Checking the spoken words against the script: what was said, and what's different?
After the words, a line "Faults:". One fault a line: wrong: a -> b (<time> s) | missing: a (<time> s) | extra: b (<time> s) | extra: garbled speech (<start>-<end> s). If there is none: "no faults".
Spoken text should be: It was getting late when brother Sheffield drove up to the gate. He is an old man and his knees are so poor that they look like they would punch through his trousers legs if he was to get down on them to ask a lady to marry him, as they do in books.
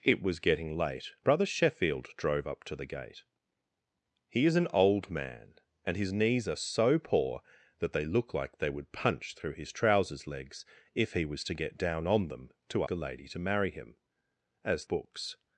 It was getting late brother Sheffield drove up to the gate. He is an old man and his knees are so poor that they look like they would punch through his trousers legs if he was to get down on them to a lady to marry him, as books.
Faults:
missing: when (1.1 s)
missing: ask (12.9 s)
missing: they do in (14.9 s)